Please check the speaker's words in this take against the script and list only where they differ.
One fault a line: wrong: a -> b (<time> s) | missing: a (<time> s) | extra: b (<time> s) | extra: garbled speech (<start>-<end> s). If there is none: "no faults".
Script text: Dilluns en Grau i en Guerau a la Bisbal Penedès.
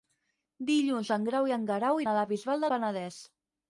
no faults